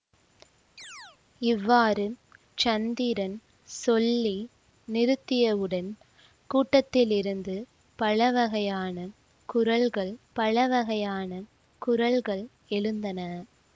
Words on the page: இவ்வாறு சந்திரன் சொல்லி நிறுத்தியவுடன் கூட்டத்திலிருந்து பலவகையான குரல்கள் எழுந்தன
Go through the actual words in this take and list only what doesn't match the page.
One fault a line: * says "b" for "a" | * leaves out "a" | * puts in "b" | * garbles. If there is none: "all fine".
* puts in "பலவகையான குரல்கள்"